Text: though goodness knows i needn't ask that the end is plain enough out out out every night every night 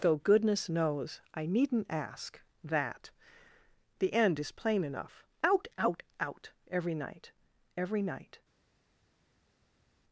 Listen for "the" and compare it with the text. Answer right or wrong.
right